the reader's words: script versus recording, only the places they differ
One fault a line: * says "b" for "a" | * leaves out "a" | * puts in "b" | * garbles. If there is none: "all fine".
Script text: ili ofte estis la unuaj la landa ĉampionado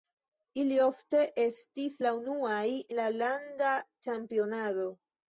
all fine